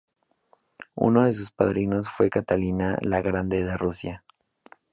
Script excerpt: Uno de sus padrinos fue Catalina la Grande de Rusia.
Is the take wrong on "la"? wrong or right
right